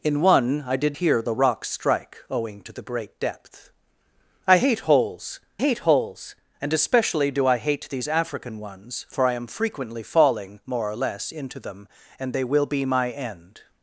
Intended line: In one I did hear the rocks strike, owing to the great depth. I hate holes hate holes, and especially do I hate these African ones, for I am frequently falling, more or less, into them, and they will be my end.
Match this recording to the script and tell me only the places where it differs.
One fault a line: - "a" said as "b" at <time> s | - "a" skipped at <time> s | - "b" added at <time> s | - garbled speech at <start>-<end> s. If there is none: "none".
none